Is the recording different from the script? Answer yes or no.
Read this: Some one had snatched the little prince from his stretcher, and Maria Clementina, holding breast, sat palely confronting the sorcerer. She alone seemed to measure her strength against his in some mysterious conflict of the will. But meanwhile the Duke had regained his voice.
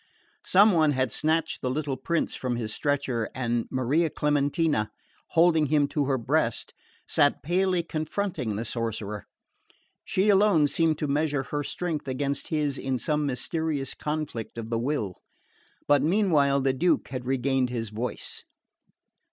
yes